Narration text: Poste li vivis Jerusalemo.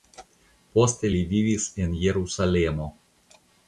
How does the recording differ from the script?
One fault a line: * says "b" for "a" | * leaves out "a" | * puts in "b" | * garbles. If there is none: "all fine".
* puts in "en"